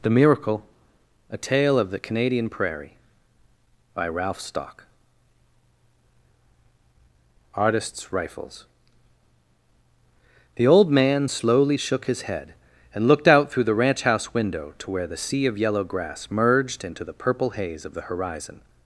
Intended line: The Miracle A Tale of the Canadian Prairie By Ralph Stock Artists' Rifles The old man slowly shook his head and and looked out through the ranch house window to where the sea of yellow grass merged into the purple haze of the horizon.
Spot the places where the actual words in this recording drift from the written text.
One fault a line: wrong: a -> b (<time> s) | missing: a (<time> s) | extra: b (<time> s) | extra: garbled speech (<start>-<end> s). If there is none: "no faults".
missing: and (13.1 s)